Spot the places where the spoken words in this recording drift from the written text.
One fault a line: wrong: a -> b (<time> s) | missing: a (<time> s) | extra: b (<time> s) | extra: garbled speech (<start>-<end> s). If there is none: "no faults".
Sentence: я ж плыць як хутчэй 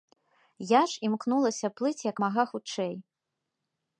extra: імкнулася (1.1 s)
extra: мага (2.3 s)